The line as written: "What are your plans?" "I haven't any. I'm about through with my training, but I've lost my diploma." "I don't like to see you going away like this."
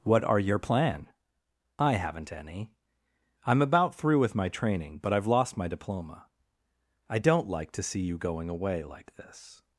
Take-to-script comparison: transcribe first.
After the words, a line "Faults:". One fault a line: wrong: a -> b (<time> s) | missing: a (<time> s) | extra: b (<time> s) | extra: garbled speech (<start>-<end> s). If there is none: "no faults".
"What are your plan?" "I haven't any. I'm about through with my training, but I've lost my diploma." "I don't like to see you going away like this."
Faults:
wrong: plans -> plan (0.6 s)